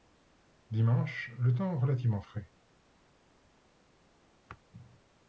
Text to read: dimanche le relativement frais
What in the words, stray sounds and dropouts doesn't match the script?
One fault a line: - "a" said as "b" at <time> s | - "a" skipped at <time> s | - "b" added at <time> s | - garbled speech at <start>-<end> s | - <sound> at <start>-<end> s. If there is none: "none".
- "temps" added at 1.5 s